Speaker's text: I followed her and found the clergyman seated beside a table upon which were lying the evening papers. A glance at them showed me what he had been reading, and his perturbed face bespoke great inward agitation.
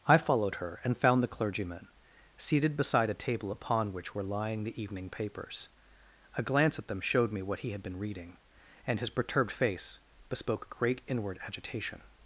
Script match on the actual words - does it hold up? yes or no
yes